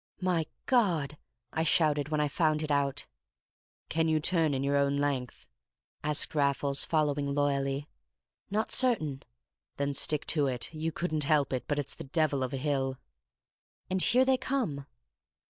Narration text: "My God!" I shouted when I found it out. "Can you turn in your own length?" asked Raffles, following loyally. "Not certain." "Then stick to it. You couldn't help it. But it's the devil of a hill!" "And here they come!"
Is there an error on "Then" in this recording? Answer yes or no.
no